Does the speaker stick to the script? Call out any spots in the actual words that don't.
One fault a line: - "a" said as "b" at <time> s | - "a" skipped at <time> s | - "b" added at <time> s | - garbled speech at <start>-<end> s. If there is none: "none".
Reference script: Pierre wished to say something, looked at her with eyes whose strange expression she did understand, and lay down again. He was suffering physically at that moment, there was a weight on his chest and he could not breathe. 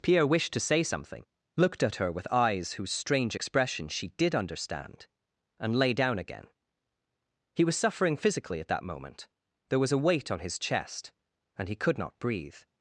none